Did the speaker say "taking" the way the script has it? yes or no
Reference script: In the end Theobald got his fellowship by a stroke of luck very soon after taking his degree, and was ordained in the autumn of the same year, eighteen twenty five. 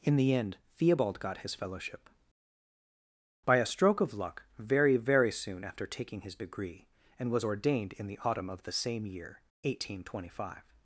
yes